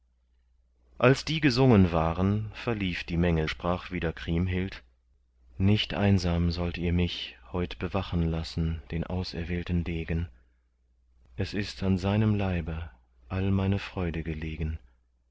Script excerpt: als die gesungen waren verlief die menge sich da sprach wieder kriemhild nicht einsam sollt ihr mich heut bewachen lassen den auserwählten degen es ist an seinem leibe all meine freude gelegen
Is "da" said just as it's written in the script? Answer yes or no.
no